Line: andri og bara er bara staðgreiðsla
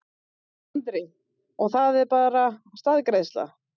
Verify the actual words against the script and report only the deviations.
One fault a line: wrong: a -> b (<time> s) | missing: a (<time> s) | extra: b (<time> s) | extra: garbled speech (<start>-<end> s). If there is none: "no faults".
wrong: bara -> það (1.7 s)